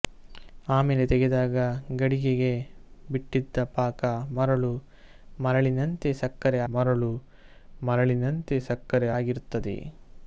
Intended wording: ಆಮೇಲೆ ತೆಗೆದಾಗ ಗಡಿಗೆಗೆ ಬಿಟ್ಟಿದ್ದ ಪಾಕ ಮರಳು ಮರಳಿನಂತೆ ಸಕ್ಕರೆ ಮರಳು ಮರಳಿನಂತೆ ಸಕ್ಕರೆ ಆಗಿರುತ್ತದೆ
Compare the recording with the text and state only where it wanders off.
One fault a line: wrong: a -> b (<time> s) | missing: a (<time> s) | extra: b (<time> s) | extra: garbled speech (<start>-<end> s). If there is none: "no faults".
no faults